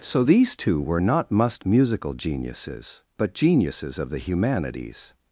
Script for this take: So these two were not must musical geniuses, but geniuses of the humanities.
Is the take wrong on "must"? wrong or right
right